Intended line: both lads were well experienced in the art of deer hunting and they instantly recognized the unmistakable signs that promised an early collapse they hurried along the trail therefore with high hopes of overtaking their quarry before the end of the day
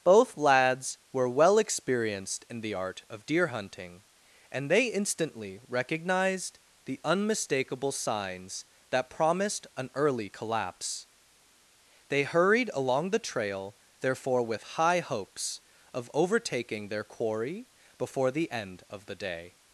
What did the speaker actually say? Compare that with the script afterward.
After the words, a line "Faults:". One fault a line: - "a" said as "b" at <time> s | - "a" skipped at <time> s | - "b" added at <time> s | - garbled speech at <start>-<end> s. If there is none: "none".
both lads were well experienced in the art of deer hunting and they instantly recognized the unmistakable signs that promised an early collapse they hurried along the trail therefore with high hopes of overtaking their quarry before the end of the day
Faults:
none